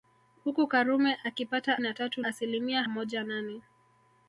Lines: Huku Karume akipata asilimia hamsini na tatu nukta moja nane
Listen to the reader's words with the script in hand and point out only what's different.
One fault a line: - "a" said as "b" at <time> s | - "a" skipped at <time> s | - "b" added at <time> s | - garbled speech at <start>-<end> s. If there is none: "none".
- "asilimia hamsini" skipped at 1.8 s
- "nukta" said as "asilimia" at 2.2 s